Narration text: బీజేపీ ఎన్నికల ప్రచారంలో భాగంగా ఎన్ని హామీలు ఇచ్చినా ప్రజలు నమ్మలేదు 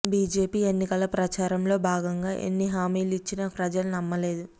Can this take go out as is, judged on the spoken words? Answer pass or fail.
pass